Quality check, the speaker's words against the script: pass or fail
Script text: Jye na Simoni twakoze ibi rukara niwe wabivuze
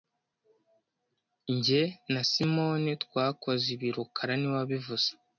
pass